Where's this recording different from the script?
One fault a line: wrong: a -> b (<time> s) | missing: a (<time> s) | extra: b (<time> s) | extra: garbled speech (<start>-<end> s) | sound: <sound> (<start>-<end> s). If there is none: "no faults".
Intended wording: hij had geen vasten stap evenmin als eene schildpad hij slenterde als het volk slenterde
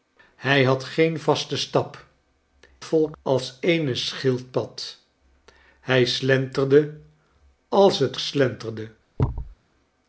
wrong: evenmin -> volk (2.8 s)
missing: volk (8.2 s)
sound: thud (9.2-9.6 s)